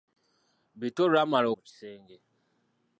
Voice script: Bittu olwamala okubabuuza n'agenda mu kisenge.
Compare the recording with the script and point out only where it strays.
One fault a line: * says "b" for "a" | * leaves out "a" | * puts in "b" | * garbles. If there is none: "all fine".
* leaves out "okubabuuza n'agenda"